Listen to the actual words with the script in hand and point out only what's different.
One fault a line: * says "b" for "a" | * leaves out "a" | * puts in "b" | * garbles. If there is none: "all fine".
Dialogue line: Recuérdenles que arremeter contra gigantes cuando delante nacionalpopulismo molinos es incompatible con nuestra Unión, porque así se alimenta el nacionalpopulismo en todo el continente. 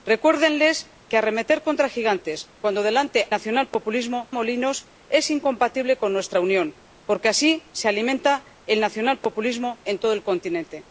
all fine